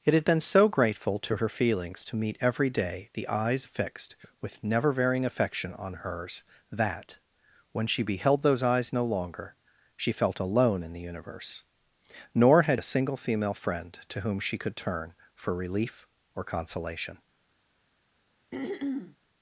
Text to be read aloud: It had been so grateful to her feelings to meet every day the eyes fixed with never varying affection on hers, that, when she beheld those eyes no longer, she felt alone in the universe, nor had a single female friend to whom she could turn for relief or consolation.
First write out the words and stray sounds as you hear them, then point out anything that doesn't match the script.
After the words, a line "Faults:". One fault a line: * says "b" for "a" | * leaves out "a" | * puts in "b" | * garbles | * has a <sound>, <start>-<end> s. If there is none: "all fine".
It had been so grateful to her feelings to meet every day the eyes fixed with never varying affection on hers, that, when she beheld those eyes no longer, she felt alone in the universe, nor had a single female friend to whom she could turn for relief or consolation.
Faults:
* has a throat clearing, 18.5-19.2 s